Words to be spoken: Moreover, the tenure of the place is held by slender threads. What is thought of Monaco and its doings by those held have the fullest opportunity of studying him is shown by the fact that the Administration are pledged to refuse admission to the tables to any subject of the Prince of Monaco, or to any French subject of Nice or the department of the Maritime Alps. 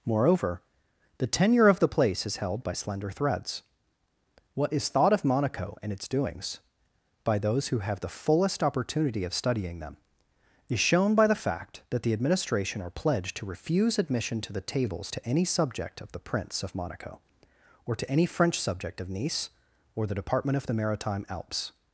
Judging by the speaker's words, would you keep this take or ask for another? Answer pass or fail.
fail